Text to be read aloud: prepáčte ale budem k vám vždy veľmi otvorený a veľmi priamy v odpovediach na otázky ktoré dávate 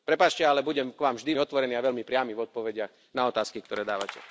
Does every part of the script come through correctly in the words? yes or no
no